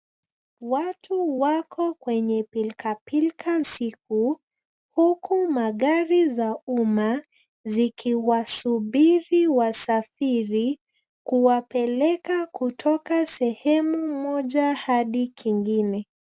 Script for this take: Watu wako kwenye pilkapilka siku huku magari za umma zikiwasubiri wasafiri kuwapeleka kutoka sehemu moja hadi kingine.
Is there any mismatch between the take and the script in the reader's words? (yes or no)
no